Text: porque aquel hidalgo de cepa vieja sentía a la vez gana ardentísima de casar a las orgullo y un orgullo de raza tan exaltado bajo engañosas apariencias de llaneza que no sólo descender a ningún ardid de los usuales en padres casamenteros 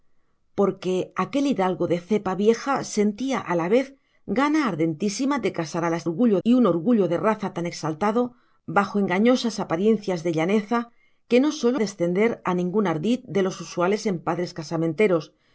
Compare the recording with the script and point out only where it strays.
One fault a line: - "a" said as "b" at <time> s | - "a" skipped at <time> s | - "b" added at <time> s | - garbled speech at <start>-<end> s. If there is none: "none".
none